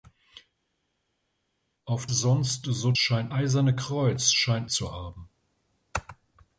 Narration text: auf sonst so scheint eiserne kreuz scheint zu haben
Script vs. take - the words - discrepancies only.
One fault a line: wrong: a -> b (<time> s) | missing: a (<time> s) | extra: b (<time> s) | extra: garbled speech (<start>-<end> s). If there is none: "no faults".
no faults